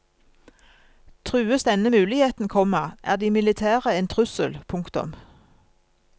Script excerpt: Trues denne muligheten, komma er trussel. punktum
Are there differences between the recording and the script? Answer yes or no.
yes